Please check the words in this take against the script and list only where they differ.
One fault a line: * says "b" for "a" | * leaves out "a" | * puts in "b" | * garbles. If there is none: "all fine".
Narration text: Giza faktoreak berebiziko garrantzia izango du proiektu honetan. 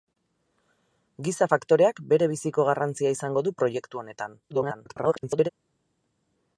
* garbles